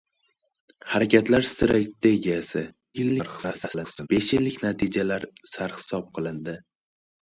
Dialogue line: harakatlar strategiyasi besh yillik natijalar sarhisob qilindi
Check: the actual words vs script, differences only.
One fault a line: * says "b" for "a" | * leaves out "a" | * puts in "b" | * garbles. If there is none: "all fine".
* garbles